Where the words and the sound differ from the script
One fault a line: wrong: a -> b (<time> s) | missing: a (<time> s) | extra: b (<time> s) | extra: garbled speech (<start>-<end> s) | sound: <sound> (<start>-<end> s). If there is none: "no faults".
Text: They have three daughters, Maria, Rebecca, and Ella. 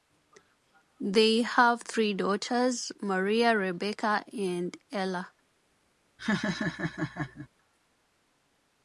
sound: laugh (6.2-7.5 s)